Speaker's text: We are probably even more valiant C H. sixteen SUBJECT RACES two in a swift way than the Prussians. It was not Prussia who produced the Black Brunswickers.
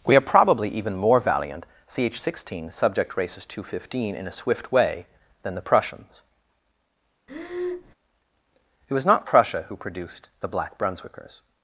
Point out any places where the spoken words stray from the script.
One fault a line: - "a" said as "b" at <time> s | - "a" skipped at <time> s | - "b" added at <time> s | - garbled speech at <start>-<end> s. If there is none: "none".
- "hundred fifteen" added at 3.6 s